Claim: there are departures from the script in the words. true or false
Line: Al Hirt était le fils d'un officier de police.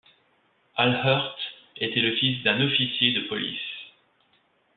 false